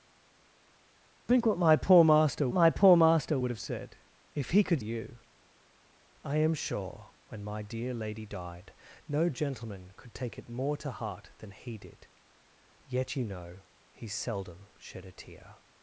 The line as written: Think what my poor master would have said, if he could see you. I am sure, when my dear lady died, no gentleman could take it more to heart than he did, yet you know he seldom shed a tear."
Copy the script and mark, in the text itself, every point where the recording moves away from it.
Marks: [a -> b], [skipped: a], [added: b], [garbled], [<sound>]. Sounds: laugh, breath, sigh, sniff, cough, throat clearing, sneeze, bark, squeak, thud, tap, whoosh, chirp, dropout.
Think what my poor master [added: my poor master] would have said, if he could [skipped: see] you. I am sure, when my dear lady died, no gentleman could take it more to heart than he did, yet you know he seldom shed a tear."